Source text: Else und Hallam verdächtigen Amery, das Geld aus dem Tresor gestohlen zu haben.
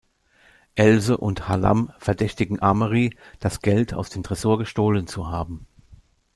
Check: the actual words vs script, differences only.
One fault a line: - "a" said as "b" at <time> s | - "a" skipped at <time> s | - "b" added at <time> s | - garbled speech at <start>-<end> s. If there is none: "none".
none